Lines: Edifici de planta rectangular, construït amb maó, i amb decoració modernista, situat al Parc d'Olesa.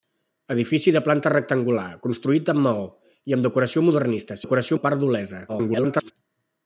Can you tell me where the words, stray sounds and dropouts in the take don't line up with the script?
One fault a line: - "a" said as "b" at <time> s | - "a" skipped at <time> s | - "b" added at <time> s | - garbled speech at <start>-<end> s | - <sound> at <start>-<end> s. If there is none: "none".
- "situat" said as "decoració" at 4.4 s
- garbled speech at 5.5-6.1 s